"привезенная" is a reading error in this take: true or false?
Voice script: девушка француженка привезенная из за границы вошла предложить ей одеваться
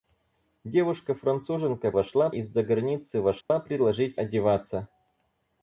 true